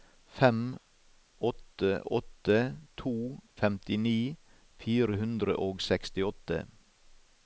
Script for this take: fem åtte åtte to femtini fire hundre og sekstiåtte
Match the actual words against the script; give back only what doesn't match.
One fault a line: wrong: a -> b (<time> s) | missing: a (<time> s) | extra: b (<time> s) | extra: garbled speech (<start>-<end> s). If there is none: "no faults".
no faults